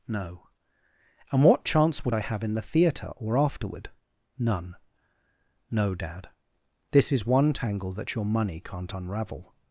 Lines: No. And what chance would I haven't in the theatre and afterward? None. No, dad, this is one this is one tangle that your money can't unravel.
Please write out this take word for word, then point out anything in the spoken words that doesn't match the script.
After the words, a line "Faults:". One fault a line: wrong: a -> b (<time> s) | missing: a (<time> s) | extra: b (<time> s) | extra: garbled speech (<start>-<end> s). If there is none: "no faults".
No. And what chance would I have in the theatre or afterward? None. No, dad, this is one tangle that your money can't unravel.
Faults:
wrong: haven't -> have (2.2 s)
wrong: and -> or (3.2 s)
missing: this is one (7.5 s)